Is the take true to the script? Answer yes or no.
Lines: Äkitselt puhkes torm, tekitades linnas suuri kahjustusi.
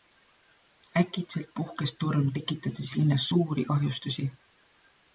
yes